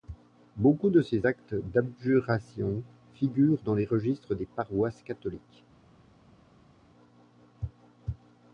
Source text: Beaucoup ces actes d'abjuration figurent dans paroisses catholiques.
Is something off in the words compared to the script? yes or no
yes